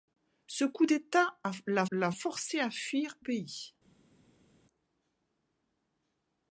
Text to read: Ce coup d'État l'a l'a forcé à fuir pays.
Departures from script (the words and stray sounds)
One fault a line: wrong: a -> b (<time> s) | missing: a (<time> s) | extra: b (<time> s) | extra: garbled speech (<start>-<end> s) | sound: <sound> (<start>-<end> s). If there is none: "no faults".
no faults